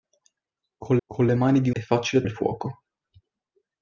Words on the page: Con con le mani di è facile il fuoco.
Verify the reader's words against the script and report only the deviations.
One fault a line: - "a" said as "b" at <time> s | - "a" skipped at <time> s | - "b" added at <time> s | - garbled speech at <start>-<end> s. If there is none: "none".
none